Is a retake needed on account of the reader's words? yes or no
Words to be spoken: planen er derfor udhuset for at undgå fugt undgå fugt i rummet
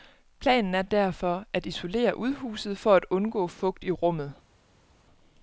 yes